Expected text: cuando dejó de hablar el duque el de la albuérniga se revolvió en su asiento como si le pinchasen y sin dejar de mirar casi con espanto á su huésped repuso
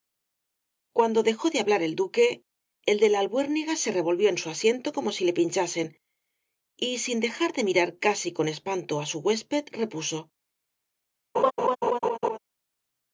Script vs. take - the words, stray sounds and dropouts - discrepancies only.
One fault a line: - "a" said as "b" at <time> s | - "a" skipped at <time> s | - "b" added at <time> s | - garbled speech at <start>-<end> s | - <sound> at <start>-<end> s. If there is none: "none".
- laugh at 11.3-12.4 s